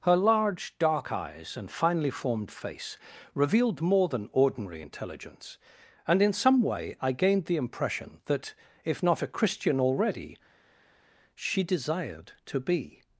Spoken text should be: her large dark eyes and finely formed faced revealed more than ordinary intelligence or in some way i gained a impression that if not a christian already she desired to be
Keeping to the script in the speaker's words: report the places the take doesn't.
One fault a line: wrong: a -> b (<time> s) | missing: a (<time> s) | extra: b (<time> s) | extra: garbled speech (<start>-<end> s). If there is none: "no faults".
wrong: faced -> face (2.5 s)
wrong: or -> and (6.1 s)
wrong: a -> the (7.5 s)